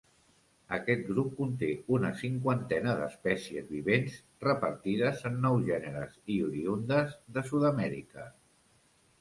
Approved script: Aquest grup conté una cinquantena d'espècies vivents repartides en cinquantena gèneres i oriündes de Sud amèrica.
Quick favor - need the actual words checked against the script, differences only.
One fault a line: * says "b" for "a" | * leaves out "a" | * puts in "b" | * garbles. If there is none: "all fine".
* says "nou" for "cinquantena"